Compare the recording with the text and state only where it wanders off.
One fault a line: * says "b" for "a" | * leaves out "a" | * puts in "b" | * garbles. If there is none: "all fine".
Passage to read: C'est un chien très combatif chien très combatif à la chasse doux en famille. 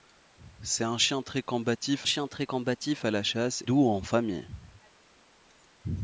all fine